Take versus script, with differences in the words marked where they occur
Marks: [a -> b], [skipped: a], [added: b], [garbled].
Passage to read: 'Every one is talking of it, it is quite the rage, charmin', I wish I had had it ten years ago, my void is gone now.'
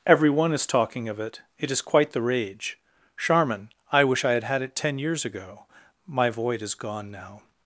'Every one is talking of it, it is quite the rage, charmin', I wish I had had it ten years ago, my void is gone now.'